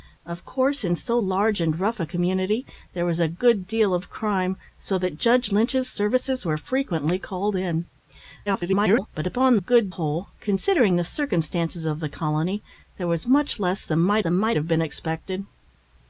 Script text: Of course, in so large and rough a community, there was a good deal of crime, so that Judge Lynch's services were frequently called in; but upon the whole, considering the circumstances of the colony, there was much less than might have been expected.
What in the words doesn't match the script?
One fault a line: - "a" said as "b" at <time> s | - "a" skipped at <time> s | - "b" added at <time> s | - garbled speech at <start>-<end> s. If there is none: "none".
- garbled speech at 8.5-9.1 s
- "the" said as "good" at 9.5 s
- "than might" added at 14.2 s